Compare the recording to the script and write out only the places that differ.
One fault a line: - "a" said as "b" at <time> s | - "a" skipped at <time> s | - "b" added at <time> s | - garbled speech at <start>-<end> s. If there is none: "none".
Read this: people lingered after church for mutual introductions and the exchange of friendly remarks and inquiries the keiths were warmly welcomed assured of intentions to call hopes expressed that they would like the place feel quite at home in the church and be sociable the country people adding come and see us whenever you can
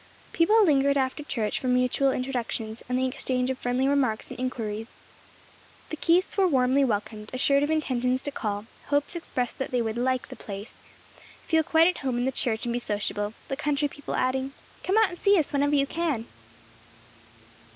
- "out" added at 15.0 s